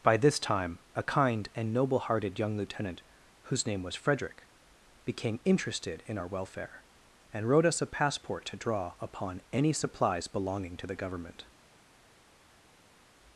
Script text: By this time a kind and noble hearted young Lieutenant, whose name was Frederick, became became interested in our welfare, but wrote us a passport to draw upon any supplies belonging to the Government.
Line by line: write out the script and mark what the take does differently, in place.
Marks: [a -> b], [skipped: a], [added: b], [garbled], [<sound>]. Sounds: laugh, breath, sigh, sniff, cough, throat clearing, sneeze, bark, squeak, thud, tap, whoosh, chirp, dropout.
By this time a kind and noble hearted young Lieutenant, whose name was Frederick, became [skipped: became] interested in our welfare, [but -> and] wrote us a passport to draw upon any supplies belonging to the Government.